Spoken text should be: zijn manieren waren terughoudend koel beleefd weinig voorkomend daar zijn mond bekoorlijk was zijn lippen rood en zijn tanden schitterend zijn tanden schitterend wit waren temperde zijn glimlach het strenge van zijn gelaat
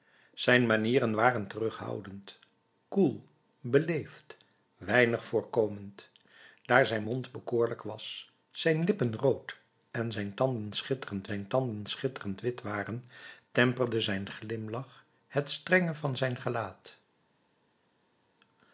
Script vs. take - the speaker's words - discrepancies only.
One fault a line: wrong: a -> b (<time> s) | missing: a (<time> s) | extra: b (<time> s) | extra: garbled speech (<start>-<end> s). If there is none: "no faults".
no faults